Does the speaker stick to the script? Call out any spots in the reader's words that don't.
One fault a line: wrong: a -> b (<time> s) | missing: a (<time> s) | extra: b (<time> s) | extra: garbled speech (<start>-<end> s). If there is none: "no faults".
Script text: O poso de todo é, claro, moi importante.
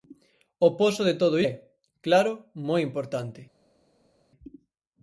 no faults